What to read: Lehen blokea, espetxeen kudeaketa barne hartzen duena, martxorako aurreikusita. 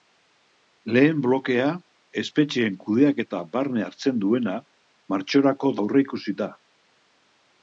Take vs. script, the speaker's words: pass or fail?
pass